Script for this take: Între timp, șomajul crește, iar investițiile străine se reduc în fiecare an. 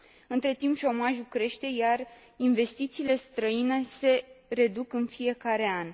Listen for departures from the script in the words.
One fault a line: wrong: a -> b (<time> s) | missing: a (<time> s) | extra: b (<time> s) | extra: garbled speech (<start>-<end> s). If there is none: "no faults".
no faults